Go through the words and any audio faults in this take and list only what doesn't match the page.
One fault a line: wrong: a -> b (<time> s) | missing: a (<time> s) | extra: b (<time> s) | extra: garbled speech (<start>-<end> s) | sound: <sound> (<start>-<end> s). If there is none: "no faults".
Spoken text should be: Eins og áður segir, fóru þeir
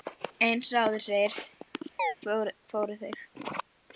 sound: chirp (2.0-2.2 s)